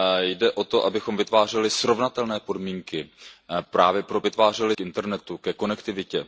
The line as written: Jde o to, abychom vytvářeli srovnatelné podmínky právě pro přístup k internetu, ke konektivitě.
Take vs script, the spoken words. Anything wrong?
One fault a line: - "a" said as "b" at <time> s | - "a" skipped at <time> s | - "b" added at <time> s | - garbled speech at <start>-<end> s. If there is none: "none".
- "přístup" said as "vytvářeli" at 4.2 s